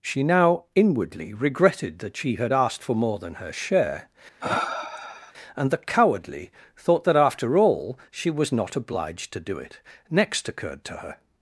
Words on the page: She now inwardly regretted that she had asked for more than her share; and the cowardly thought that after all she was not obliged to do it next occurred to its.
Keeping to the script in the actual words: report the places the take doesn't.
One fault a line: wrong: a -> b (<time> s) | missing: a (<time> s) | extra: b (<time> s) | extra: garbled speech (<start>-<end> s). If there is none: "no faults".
wrong: its -> her (11.0 s)